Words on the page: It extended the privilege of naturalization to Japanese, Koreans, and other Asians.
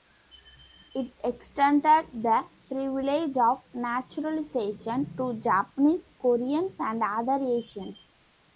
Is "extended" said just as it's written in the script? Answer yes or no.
yes